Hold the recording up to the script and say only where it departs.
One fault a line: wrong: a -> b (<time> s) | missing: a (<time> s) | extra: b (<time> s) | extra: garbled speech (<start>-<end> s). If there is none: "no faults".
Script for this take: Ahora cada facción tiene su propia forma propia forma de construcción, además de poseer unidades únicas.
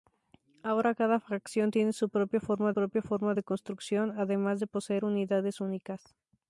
no faults